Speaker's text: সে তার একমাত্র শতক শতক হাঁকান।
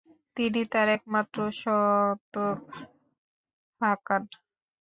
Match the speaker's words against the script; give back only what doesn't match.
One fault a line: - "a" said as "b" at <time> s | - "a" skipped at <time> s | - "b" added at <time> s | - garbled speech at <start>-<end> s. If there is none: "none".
- "সে" said as "তিনি" at 0.4 s
- "শতক" skipped at 2.6 s